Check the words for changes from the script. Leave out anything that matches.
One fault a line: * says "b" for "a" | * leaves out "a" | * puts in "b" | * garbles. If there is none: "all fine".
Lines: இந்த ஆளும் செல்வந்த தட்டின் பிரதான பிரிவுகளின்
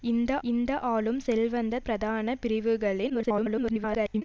* puts in "இந்த"
* leaves out "தட்டின்"
* garbles